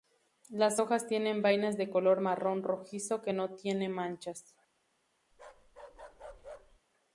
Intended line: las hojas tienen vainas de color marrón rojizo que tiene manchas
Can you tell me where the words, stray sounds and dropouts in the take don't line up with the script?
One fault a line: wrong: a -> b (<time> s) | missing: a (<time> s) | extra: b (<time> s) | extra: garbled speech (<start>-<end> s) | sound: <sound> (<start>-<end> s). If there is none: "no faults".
extra: no (3.3 s)
sound: bark (5.3-6.8 s)